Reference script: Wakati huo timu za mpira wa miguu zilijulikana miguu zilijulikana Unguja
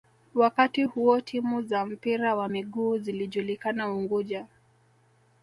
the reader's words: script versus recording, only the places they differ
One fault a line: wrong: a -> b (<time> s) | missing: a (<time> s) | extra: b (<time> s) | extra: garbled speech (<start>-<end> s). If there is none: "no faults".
missing: miguu zilijulikana (3.9 s)